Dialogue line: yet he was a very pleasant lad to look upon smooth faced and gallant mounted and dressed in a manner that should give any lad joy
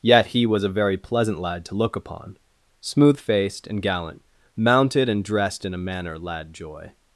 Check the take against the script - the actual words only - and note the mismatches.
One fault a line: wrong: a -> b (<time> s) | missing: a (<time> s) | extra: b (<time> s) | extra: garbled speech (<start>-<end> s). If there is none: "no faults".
missing: that should give any (6.2 s)